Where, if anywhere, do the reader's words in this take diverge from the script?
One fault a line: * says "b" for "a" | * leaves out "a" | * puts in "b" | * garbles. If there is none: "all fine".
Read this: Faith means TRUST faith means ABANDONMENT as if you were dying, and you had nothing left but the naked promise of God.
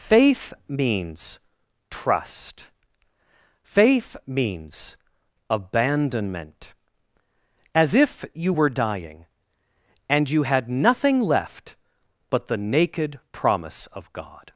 all fine